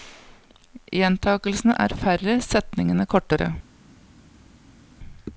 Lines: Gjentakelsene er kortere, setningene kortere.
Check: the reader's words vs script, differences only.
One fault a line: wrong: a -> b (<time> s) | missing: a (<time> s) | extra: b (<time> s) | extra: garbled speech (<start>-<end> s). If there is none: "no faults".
wrong: kortere -> færre (2.0 s)